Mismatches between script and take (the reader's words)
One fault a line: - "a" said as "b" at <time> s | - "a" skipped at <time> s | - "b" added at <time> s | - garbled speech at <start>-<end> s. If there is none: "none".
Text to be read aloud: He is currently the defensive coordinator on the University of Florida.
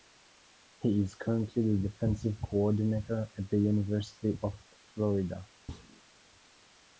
- "on" said as "at" at 3.4 s